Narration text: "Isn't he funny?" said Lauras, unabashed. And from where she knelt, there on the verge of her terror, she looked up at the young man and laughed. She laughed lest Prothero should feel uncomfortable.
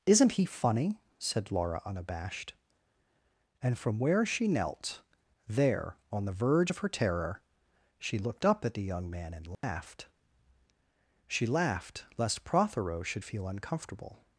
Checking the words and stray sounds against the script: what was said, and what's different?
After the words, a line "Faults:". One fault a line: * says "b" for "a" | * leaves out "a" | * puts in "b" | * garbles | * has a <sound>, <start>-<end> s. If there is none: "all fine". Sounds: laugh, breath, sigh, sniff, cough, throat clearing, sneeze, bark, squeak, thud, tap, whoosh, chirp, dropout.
"Isn't he funny?" said Laura, unabashed. And from where she knelt, there on the verge of her terror, she looked up at the young man and laughed. She laughed lest Prothero should feel uncomfortable.
Faults:
* says "Laura" for "Lauras"
* has a dropout, 9.5-9.6 s